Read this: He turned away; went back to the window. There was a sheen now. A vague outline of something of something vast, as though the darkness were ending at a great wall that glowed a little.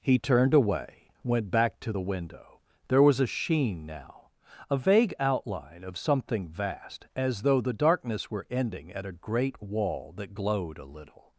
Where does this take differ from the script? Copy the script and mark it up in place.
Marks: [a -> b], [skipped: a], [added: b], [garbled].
He turned away; went back to the window. There was a sheen now. A vague outline of something [skipped: of something] vast, as though the darkness were ending at a great wall that glowed a little.